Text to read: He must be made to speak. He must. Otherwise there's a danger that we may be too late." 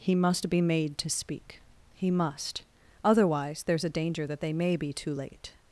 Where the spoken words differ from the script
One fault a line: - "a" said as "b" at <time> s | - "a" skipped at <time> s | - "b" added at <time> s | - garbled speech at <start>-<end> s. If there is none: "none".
- "we" said as "they" at 4.4 s